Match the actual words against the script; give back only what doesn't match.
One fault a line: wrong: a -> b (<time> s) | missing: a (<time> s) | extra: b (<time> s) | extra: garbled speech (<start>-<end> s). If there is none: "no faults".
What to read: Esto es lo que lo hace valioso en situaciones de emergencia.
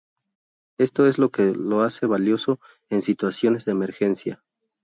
no faults